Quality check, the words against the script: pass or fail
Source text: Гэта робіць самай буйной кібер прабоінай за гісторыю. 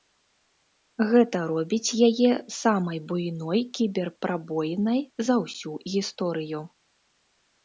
fail